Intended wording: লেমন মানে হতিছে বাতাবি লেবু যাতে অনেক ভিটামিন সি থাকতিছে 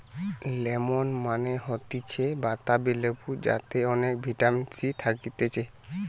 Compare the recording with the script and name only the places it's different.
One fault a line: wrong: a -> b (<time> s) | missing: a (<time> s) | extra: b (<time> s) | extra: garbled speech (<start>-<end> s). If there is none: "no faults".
no faults